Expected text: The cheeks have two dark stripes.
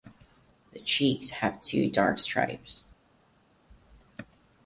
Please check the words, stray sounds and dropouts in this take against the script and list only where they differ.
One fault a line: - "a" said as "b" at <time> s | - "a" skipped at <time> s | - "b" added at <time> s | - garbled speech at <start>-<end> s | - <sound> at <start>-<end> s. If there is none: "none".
none